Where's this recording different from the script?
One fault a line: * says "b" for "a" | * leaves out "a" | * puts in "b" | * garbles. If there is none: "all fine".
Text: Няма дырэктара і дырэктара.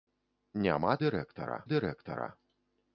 all fine